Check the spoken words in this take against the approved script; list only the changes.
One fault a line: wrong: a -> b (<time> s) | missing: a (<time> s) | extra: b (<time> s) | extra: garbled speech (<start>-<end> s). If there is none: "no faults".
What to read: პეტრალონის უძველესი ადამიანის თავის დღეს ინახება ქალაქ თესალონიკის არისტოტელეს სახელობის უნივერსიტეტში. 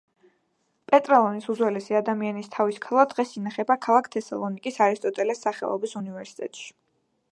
extra: ქალა (2.9 s)